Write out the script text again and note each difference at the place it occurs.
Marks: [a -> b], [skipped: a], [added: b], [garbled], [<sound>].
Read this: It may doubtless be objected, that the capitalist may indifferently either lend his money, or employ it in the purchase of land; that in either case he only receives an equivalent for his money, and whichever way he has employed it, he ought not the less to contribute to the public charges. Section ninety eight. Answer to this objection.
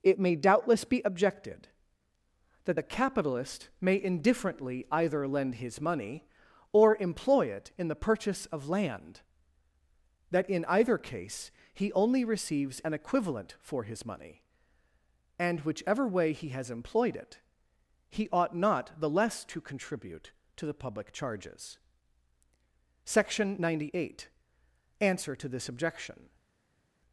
It may doubtless be objected, that the capitalist may indifferently either lend his money, or employ it in the purchase of land; that in either case he only receives an equivalent for his money, and whichever way he has employed it, he ought not the less to contribute to the public charges. Section ninety eight. Answer to this objection.